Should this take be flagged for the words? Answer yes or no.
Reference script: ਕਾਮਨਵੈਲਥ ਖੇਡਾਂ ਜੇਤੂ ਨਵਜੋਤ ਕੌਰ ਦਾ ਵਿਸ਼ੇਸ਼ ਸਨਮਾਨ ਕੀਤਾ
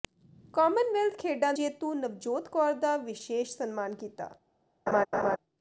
no